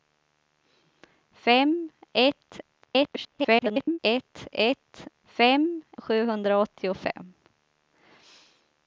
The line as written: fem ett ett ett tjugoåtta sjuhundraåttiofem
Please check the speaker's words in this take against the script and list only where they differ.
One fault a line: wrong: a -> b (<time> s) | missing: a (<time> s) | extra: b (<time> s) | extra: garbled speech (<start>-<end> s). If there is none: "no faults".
extra: garbled speech (2.8-4.0 s)
wrong: tjugoåtta -> fem (5.2 s)